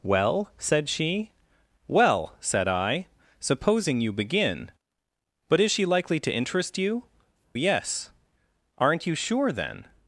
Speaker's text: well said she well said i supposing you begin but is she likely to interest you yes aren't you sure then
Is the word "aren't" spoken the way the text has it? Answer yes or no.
yes